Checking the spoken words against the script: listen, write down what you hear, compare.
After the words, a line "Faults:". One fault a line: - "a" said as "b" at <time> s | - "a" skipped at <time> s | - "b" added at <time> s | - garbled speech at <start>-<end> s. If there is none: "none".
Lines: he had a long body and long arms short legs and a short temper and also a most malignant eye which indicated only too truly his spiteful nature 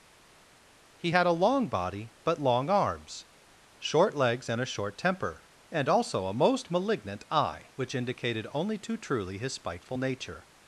he had a long body but long arms short legs and a short temper and also a most malignant eye which indicated only too truly his spiteful nature
Faults:
- "and" said as "but" at 2.2 s